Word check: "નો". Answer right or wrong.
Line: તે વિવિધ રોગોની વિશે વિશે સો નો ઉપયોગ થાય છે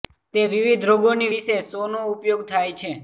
right